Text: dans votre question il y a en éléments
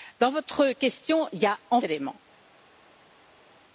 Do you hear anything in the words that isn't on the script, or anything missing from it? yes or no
no